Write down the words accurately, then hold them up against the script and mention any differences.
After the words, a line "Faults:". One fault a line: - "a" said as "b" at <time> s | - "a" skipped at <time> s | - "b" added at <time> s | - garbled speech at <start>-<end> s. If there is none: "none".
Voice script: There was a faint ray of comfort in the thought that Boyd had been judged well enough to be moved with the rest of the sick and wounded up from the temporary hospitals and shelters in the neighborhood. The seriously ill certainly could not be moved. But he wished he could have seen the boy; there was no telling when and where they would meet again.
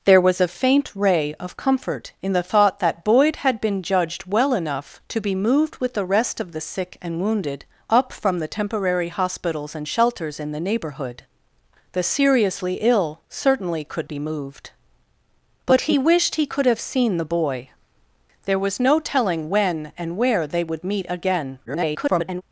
There was a faint ray of comfort in the thought that Boyd had been judged well enough to be moved with the rest of the sick and wounded up from the temporary hospitals and shelters in the neighborhood. The seriously ill certainly could be moved. But he wished he could have seen the boy; there was no telling when and where they would meet again. [garbled]
Faults:
- "not" skipped at 14.1 s
- garbled speech at 21.6-22.4 s